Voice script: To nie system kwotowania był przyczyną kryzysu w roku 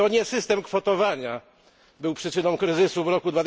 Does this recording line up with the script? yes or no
yes